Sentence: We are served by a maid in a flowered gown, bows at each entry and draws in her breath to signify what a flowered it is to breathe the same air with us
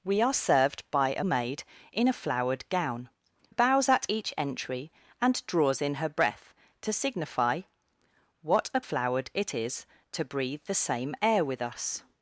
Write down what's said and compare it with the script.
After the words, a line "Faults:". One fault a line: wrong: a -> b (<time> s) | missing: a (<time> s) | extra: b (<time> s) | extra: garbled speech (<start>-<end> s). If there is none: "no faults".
We are served by a maid in a flowered gown, bows at each entry and draws in her breath to signify what a flowered it is to breathe the same air with us
Faults:
no faults